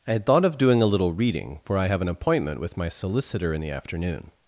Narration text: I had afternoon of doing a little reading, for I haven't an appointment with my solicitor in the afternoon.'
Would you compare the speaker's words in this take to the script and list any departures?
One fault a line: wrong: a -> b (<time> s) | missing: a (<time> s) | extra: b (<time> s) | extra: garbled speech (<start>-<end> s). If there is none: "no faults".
wrong: afternoon -> thought (0.2 s)
wrong: haven't -> have (1.8 s)